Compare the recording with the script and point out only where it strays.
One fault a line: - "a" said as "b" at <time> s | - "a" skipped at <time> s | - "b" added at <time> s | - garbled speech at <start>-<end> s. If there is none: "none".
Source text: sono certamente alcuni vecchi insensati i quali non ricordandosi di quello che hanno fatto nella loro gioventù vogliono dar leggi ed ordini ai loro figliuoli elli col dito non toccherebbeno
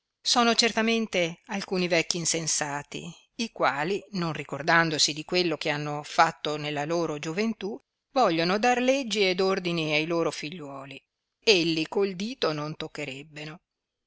none